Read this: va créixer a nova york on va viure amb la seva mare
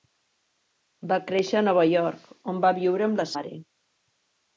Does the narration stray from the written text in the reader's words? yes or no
yes